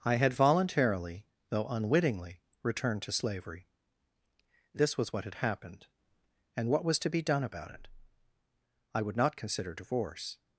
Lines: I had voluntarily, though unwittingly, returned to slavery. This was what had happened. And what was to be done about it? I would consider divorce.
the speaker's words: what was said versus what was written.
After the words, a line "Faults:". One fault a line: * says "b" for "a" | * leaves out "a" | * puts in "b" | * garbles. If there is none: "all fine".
I had voluntarily, though unwittingly, returned to slavery. This was what had happened. And what was to be done about it? I would not consider divorce.
Faults:
* puts in "not"